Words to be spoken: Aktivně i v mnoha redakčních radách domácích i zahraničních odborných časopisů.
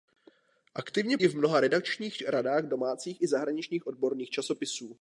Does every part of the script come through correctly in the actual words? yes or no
yes